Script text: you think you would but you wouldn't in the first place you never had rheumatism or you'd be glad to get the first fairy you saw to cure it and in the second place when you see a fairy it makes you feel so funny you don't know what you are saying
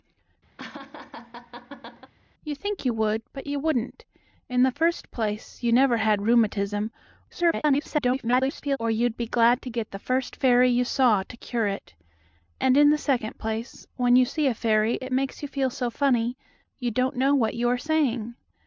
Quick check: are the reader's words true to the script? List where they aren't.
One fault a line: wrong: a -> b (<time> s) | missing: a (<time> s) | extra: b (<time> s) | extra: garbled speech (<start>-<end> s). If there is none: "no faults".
extra: garbled speech (7.3-8.8 s)